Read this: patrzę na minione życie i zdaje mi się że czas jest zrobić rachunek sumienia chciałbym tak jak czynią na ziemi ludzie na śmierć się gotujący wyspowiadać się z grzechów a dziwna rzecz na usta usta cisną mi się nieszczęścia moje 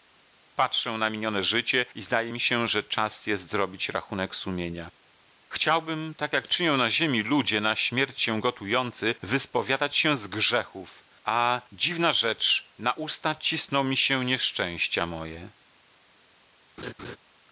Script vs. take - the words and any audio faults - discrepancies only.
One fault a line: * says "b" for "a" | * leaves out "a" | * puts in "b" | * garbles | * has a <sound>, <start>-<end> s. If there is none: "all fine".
* leaves out "usta"
* has a laugh, 16.8-17.2 s